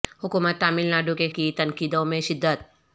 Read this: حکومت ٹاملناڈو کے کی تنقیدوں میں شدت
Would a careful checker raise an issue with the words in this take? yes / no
no